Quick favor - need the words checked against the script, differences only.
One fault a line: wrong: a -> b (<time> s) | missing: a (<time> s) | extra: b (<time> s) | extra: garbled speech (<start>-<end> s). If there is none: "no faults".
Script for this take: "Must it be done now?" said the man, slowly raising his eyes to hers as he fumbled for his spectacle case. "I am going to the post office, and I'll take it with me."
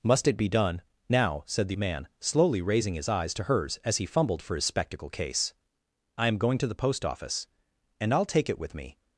no faults